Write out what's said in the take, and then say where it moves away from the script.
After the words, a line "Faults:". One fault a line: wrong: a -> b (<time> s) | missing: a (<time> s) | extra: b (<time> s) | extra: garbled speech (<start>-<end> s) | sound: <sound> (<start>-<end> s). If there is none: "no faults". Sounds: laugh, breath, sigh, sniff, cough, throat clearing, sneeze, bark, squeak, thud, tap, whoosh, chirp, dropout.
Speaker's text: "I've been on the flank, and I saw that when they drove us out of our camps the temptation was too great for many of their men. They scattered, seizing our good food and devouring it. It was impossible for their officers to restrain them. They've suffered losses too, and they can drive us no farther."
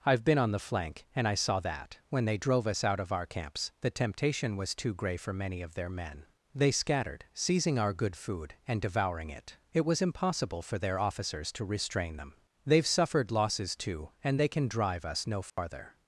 "I've been on the flank, and I saw that when they drove us out of our camps the temptation was too grey for many of their men. They scattered, seizing our good food and devouring it. It was impossible for their officers to restrain them. They've suffered losses too, and they can drive us no farther."
Faults:
wrong: great -> grey (5.0 s)
sound: dropout (15.5-15.6 s)